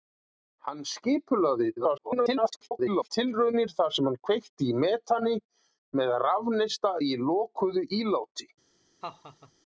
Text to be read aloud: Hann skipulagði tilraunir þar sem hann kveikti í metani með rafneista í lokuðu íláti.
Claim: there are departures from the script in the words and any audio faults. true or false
true